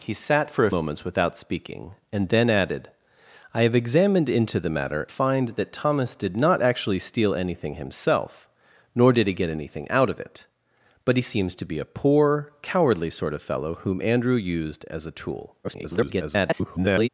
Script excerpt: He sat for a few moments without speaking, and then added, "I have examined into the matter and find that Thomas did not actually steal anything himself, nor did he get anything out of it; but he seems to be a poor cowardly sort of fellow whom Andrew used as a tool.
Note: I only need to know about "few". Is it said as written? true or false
false